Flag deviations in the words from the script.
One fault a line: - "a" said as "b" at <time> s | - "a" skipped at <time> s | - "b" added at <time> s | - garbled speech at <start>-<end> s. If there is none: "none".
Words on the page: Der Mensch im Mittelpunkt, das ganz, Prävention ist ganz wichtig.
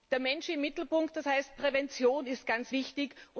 - "ganz" said as "heißt" at 1.2 s